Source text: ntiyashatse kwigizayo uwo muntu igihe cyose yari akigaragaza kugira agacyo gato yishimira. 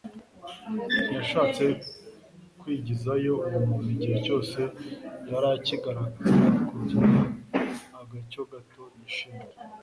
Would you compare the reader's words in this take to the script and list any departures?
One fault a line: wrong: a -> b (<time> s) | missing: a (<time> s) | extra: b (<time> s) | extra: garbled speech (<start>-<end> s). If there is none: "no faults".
no faults